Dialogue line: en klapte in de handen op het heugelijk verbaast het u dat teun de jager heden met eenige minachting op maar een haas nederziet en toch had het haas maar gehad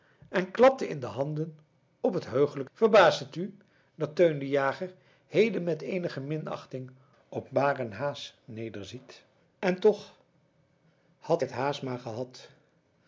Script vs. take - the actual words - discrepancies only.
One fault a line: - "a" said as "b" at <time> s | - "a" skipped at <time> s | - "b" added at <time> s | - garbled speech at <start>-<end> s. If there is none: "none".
none